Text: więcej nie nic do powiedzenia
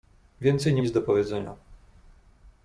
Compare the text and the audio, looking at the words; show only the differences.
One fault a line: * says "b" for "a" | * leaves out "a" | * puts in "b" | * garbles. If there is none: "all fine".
all fine